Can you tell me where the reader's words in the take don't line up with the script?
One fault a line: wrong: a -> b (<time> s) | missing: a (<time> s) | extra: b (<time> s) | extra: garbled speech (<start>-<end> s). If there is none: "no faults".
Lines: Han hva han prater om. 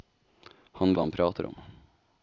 no faults